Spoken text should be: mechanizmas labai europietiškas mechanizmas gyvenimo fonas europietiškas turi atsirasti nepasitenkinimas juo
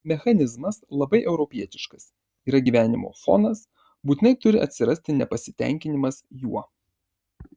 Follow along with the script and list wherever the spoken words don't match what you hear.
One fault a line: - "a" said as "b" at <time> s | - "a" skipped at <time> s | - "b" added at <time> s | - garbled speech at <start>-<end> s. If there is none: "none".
- "mechanizmas" said as "yra" at 2.5 s
- "europietiškas" said as "būtinai" at 4.1 s